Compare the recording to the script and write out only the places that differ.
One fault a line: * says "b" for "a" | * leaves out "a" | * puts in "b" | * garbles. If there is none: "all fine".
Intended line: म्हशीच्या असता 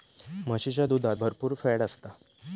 * puts in "दुधात भरपुर फॅट"